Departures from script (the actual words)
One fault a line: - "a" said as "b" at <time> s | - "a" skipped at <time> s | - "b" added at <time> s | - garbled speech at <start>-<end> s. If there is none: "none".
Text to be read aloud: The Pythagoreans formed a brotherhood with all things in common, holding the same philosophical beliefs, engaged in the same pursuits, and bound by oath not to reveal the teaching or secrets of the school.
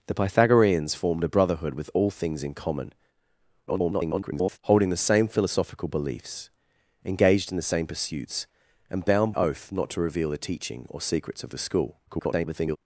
- garbled speech at 3.7-4.6 s
- "by" skipped at 9.3 s
- garbled speech at 12.1-12.8 s